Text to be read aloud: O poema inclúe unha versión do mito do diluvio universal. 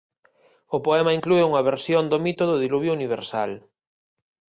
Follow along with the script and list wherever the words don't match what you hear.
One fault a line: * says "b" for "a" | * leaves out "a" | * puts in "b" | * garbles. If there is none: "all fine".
all fine